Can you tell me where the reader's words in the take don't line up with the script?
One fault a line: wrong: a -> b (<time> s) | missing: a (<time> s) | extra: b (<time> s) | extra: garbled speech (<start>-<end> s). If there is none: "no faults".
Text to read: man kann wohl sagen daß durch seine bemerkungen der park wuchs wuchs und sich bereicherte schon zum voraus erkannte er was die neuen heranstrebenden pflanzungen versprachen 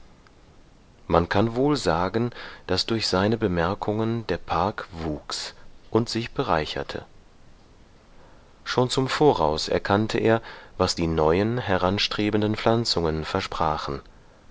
missing: wuchs (5.5 s)